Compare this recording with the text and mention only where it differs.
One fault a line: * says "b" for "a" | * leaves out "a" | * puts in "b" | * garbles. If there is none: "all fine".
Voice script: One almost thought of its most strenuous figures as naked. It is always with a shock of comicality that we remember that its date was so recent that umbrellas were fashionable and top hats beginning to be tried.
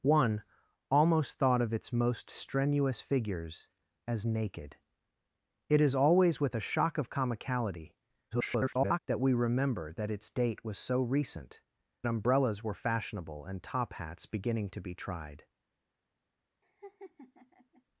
* garbles
* leaves out "that"